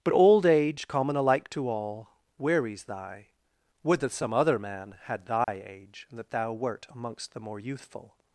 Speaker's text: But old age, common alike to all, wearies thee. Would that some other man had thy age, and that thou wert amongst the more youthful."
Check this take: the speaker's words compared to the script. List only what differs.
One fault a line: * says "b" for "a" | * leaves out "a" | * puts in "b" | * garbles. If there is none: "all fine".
* says "thy" for "thee"